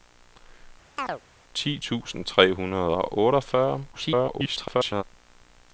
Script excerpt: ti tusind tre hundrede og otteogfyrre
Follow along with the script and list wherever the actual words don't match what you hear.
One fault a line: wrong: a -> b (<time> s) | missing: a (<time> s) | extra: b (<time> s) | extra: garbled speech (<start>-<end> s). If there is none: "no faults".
extra: garbled speech (3.9-5.0 s)